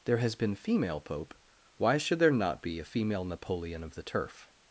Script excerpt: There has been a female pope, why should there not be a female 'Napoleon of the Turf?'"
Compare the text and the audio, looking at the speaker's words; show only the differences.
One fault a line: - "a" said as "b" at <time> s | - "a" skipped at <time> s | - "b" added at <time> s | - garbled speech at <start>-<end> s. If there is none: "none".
- "a" skipped at 0.6 s